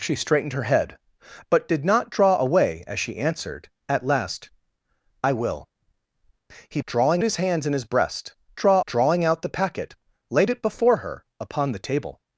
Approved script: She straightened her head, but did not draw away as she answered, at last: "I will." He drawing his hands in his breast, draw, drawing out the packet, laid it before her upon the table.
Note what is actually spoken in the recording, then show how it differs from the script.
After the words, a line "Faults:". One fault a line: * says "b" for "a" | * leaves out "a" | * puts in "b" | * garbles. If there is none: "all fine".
She straightened her head, but did not draw away as she answered, at last: "I will." He drawing his hands in his breast, draw, drawing out the packet, laid it before her upon the table.
Faults:
all fine